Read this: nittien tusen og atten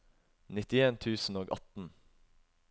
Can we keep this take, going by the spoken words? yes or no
yes